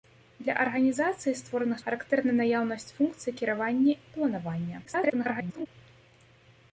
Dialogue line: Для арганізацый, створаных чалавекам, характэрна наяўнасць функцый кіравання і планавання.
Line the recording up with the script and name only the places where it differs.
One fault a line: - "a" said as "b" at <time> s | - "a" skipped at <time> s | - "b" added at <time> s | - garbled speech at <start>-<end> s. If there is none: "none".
- "чалавекам" skipped at 1.8 s
- garbled speech at 4.9-5.7 s